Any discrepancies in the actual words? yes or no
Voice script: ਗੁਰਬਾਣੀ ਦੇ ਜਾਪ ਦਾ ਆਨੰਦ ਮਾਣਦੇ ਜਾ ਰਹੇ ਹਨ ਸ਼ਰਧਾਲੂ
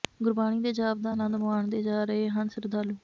no